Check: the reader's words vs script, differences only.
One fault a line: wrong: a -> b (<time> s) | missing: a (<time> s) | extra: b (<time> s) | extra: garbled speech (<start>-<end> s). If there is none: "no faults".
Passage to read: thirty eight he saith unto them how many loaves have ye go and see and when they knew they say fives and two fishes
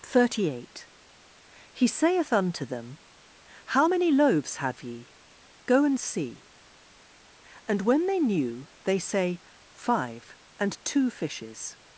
wrong: fives -> five (9.7 s)